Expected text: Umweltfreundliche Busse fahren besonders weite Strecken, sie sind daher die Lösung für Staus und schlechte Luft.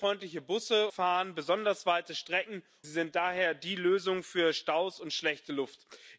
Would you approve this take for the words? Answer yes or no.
yes